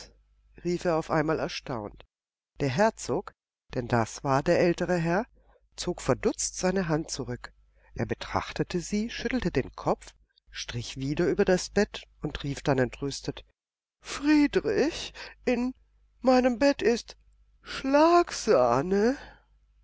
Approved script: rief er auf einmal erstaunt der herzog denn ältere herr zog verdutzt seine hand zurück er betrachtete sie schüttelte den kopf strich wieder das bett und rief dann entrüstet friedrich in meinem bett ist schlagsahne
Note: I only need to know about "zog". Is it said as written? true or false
true